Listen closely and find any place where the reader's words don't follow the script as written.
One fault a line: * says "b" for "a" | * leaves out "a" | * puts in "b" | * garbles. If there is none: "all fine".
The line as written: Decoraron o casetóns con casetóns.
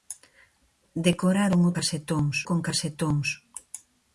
all fine